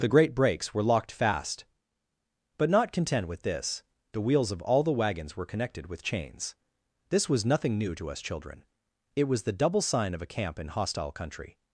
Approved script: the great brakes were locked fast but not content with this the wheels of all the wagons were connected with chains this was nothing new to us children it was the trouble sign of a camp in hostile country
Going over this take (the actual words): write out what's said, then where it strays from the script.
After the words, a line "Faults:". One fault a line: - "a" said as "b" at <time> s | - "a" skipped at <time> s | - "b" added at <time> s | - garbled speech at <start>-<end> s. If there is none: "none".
the great brakes were locked fast but not content with this the wheels of all the wagons were connected with chains this was nothing new to us children it was the double sign of a camp in hostile country
Faults:
- "trouble" said as "double" at 9.5 s